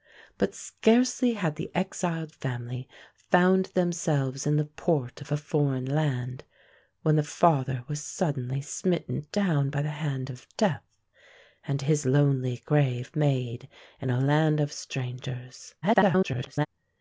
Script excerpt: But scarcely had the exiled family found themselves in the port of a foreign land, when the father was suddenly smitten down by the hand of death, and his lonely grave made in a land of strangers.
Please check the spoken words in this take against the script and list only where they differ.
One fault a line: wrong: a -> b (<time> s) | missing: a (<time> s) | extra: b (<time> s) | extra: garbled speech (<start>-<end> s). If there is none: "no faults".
extra: garbled speech (15.8-16.7 s)